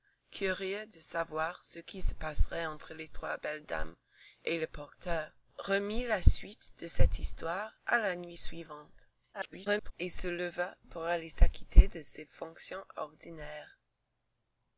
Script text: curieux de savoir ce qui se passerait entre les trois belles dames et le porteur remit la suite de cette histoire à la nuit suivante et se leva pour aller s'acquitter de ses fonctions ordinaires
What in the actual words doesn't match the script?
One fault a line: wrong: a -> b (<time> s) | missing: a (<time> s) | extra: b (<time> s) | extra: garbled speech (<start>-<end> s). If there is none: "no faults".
extra: garbled speech (9.3-9.9 s)